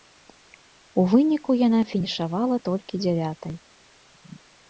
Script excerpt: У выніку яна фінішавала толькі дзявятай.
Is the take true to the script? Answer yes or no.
yes